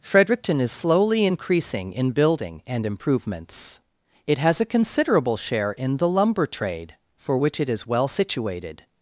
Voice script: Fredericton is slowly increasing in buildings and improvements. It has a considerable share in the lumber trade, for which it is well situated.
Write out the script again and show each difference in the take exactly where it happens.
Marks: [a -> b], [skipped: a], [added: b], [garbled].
Fredericton is slowly increasing in [buildings -> building] and improvements. It has a considerable share in the lumber trade, for which it is well situated.